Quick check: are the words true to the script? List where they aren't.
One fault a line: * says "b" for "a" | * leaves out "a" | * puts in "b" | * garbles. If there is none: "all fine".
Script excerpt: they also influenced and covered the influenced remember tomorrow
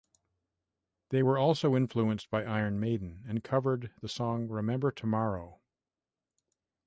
* puts in "were"
* puts in "by iron maiden"
* says "song" for "influenced"